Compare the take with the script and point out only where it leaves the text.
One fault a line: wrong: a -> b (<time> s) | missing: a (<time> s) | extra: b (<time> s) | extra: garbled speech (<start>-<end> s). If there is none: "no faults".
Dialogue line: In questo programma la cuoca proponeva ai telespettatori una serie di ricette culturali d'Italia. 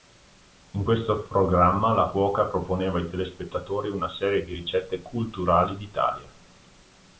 no faults